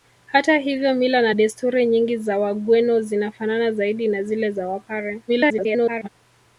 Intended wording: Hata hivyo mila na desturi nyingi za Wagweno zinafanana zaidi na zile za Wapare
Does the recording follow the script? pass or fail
fail